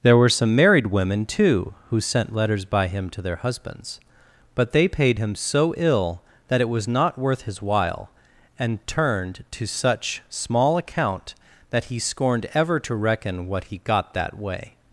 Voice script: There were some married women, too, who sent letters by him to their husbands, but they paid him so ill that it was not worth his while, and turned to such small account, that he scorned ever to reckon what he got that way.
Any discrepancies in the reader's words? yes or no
no